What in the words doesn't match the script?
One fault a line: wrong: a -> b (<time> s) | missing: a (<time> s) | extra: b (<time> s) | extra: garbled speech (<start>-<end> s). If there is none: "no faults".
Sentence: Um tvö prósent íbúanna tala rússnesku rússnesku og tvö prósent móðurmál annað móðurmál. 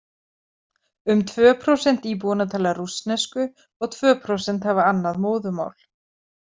missing: rússnesku (3.5 s)
wrong: móðurmál -> hafa (4.7 s)